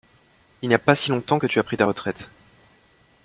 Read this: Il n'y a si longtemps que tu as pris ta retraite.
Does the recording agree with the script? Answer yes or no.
no